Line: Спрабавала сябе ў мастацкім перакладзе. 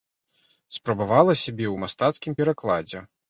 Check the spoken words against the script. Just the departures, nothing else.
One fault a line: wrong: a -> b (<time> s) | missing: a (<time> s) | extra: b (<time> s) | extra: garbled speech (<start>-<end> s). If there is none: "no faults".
no faults